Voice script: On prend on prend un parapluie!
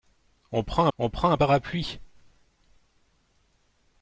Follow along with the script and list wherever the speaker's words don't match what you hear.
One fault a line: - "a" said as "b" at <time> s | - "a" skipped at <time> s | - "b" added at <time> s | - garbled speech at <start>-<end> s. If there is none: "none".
none